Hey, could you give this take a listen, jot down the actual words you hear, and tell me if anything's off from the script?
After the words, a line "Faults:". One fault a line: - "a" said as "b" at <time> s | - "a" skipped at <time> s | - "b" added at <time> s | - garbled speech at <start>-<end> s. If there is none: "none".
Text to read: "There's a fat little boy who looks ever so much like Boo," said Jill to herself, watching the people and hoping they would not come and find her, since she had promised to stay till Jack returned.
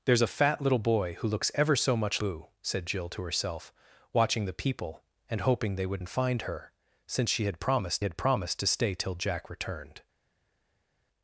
"There's a fat little boy who looks ever so much Boo," said Jill to herself, watching the people and hoping they would and find her, since she had promised had promised to stay till Jack returned.
Faults:
- "like" skipped at 2.2 s
- "not come" skipped at 6.0 s
- "had promised" added at 8.0 s